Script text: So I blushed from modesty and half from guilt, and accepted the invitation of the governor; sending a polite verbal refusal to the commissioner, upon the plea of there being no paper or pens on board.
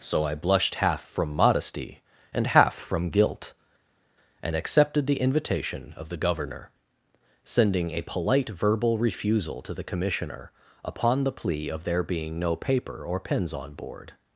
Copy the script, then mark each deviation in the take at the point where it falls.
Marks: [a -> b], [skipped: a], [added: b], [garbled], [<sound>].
So I blushed [added: half] from modesty and half from guilt, and accepted the invitation of the governor; sending a polite verbal refusal to the commissioner, upon the plea of there being no paper or pens on board.